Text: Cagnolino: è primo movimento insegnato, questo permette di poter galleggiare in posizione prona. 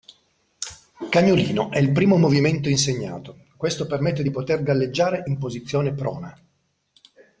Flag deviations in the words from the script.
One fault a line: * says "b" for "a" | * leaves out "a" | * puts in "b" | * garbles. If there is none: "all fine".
* puts in "il"